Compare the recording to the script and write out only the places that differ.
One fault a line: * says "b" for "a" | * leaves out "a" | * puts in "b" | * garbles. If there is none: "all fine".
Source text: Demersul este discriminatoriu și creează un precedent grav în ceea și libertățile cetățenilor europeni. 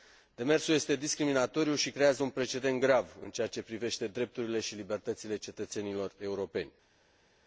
* puts in "ce privește drepturile"